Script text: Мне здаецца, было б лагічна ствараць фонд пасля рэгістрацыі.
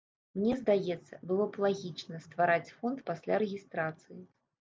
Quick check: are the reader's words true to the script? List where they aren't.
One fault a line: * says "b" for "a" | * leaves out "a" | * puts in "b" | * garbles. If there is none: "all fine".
all fine